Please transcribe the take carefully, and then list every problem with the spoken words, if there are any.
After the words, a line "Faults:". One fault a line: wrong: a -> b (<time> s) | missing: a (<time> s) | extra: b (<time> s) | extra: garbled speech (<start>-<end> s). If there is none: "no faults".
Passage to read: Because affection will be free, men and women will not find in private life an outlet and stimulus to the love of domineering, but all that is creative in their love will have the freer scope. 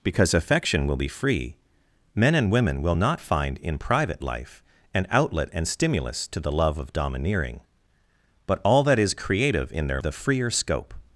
Because affection will be free, men and women will not find in private life an outlet and stimulus to the love of domineering, but all that is creative in their the freer scope.
Faults:
missing: love will have (10.0 s)